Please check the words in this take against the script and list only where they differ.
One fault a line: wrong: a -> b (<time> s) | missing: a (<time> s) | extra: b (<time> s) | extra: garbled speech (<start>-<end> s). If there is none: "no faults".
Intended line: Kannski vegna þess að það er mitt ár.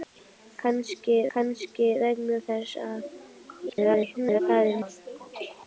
extra: kannski (1.3 s)
extra: garbled speech (3.7-4.4 s)
missing: mitt (4.8 s)